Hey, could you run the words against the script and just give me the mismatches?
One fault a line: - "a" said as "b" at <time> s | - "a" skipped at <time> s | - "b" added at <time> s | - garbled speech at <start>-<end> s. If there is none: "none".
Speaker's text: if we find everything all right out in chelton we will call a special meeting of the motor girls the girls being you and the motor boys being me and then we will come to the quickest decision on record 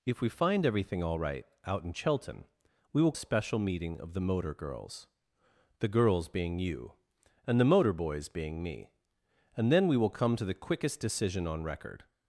- "call" skipped at 3.1 s